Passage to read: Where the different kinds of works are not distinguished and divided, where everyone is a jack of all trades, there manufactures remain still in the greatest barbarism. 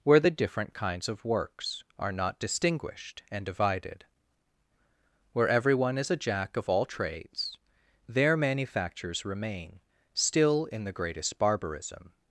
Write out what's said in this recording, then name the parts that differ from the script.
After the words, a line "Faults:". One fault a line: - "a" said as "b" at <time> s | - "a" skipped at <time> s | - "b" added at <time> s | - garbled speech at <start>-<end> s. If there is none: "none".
Where the different kinds of works are not distinguished and divided, where everyone is a jack of all trades, there manufactures remain still in the greatest barbarism.
Faults:
none